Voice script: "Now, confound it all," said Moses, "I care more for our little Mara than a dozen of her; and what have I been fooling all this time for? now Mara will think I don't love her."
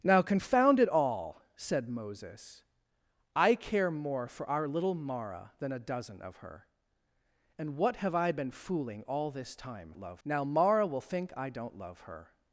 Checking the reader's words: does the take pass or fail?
fail